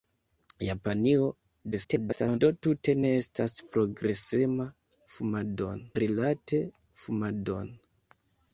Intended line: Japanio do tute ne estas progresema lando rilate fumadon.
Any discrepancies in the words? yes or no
yes